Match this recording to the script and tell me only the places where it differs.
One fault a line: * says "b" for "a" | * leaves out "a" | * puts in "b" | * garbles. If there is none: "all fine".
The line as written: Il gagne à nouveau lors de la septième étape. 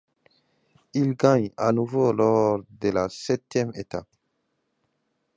all fine